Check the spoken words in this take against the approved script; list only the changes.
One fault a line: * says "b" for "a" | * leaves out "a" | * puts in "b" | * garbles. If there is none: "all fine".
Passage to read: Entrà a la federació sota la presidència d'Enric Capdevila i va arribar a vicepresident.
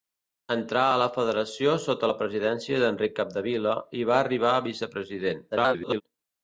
* garbles